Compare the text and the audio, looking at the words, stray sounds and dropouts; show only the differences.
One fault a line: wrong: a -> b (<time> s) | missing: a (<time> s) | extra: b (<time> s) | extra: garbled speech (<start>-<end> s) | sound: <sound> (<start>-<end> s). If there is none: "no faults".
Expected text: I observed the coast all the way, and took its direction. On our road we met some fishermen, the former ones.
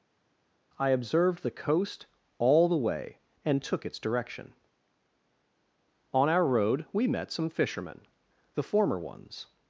no faults